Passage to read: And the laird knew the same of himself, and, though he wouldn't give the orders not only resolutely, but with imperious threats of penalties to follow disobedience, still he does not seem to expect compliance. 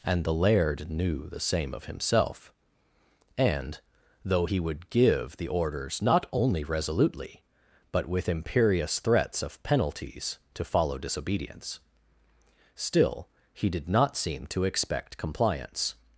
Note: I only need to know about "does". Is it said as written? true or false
false